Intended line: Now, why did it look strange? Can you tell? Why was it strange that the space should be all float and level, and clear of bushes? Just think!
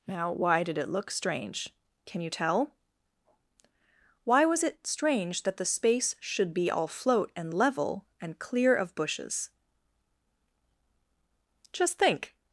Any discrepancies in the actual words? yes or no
no